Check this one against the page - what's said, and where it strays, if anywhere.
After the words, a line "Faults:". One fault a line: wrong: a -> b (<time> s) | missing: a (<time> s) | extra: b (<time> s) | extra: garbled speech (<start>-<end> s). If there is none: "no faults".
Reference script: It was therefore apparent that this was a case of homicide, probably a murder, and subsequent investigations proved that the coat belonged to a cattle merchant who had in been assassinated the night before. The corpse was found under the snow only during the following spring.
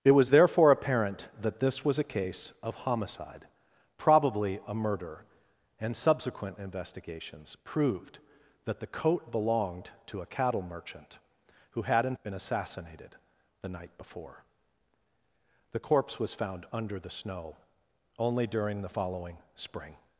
It was therefore apparent that this was a case of homicide, probably a murder, and subsequent investigations proved that the coat belonged to a cattle merchant who had in been assassinated the night before. The corpse was found under the snow only during the following spring.
Faults:
no faults